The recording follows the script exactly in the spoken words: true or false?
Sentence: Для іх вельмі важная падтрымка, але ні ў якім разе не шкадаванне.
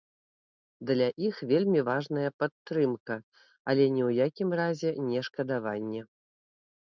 true